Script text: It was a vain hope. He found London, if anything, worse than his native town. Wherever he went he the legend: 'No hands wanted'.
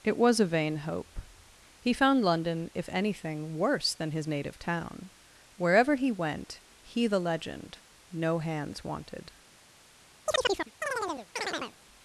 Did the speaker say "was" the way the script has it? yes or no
yes